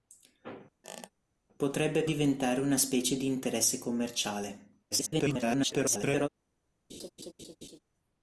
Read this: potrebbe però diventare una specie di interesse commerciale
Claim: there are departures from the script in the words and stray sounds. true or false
true